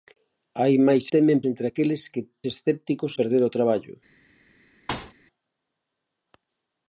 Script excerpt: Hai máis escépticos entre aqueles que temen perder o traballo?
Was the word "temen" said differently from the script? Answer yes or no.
yes